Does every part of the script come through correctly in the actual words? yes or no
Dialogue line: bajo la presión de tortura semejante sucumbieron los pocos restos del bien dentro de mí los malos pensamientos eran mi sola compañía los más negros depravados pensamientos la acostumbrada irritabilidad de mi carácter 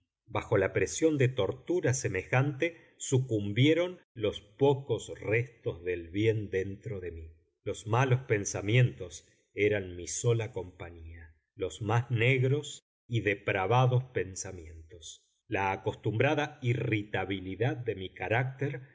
no